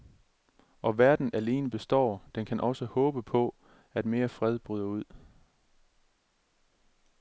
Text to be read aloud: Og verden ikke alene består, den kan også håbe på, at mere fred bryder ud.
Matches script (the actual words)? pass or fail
fail